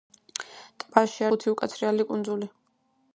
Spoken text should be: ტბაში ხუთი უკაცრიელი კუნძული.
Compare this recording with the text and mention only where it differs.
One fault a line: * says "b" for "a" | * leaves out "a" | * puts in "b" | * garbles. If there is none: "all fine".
all fine